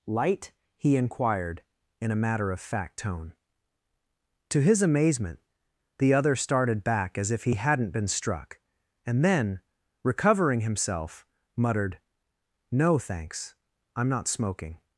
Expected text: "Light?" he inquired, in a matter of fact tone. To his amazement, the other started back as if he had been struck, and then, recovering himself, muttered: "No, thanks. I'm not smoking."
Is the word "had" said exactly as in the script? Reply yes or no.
no